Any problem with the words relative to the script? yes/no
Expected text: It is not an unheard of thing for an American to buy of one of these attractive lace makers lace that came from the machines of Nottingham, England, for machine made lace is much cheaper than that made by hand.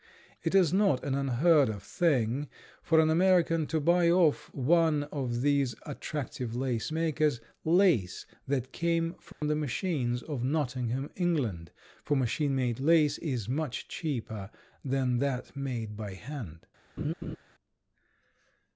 no